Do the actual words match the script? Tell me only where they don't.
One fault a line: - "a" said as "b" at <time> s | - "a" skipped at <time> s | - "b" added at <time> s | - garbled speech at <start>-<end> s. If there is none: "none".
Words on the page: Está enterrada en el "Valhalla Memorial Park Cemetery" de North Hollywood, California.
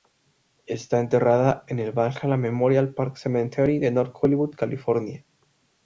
none